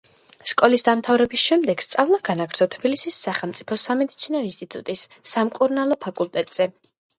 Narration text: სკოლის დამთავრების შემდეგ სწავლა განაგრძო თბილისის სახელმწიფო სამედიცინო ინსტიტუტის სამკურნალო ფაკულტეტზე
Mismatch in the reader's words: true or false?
false